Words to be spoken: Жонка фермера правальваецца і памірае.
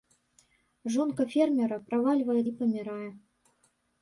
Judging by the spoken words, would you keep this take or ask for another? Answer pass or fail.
pass